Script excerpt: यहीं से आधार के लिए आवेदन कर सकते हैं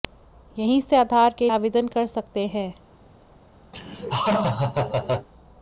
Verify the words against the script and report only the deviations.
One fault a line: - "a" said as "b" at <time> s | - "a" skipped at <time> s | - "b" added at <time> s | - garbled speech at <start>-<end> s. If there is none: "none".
- "लिए" skipped at 1.5 s